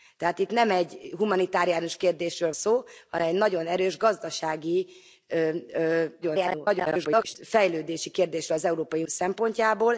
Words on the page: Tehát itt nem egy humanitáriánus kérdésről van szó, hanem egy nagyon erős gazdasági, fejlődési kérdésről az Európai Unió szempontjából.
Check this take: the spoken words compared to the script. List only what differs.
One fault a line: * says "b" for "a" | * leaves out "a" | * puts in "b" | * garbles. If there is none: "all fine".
* leaves out "van"
* garbles
* leaves out "Unió"